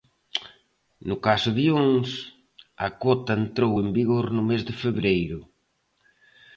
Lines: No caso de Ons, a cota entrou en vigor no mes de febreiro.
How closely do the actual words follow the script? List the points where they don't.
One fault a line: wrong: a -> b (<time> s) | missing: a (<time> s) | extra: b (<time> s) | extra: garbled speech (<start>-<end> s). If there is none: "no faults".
no faults